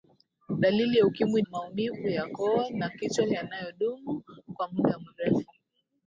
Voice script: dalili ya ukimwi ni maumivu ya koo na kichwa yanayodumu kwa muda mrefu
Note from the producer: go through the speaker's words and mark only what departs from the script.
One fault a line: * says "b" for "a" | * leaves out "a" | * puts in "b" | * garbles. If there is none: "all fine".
* leaves out "ni"